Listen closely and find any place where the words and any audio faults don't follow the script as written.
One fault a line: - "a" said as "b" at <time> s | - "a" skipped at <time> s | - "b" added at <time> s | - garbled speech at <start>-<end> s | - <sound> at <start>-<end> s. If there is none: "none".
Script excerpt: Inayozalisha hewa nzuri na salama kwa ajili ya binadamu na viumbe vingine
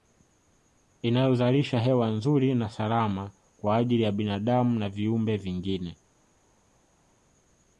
none